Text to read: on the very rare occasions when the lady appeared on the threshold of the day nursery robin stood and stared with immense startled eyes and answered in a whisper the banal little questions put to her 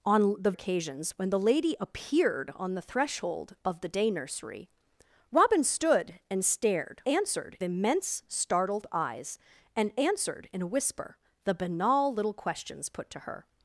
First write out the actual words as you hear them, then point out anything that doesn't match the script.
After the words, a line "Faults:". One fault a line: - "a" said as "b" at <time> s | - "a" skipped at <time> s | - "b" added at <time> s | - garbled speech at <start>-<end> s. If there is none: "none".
on the occasions when the lady appeared on the threshold of the day nursery robin stood and stared answered immense startled eyes and answered in a whisper the banal little questions put to her
Faults:
- "very rare" skipped at 0.5 s
- "with" said as "answered" at 7.1 s